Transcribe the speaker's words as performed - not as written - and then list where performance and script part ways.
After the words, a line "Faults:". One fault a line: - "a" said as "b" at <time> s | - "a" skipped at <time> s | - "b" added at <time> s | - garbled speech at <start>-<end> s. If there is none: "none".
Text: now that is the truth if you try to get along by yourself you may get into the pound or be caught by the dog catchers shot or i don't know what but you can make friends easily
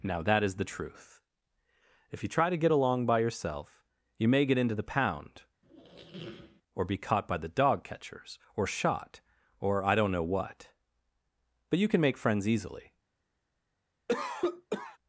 now that is the truth if you try to get along by yourself you may get into the pound or be caught by the dog catchers or shot or i don't know what but you can make friends easily
Faults:
- "or" added at 8.6 s